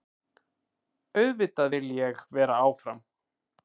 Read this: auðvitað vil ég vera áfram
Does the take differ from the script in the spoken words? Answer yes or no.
no